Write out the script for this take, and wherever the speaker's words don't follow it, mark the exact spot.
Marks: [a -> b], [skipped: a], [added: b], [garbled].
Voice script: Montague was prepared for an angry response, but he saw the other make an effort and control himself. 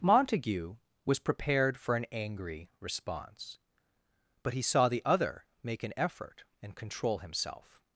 Montague was prepared for an angry response, but he saw the other make an effort and control himself.